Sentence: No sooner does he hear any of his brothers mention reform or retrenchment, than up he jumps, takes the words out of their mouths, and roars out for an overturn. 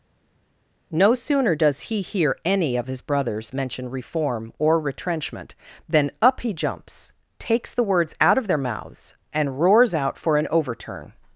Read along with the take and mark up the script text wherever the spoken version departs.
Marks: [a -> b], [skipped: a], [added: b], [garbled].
No sooner does he hear any of his brothers mention reform or retrenchment, than up he jumps, takes the words out of their mouths, and roars out for an overturn.